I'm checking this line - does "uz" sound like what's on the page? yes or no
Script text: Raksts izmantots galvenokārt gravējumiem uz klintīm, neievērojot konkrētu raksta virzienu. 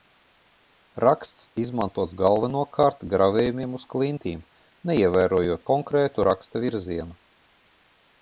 yes